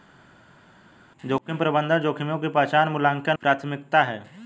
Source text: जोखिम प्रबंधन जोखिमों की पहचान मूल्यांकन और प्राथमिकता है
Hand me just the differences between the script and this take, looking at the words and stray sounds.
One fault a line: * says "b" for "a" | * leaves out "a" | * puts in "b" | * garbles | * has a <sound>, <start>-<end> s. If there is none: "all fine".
* leaves out "और"